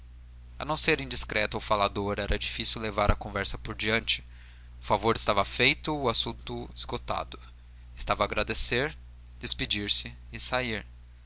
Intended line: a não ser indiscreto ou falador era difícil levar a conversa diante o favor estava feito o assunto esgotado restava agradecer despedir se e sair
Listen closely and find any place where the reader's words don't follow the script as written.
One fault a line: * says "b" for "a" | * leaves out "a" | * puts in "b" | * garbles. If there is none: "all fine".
* puts in "por"